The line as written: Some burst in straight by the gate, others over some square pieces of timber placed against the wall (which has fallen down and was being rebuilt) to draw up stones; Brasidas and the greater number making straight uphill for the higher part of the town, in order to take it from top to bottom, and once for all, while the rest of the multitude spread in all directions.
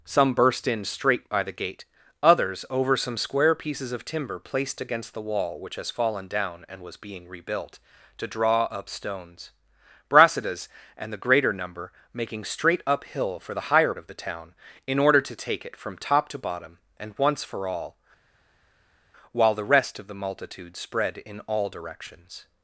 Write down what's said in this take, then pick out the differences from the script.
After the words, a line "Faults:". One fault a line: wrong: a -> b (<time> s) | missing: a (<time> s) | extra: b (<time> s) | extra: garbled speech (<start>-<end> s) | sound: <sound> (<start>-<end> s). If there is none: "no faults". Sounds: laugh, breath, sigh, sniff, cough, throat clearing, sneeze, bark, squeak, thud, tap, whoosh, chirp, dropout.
Some burst in straight by the gate, others over some square pieces of timber placed against the wall (which has fallen down and was being rebuilt) to draw up stones; Brasidas and the greater number making straight uphill for the higher of the town, in order to take it from top to bottom, and once for all, while the rest of the multitude spread in all directions.
Faults:
missing: part (13.9 s)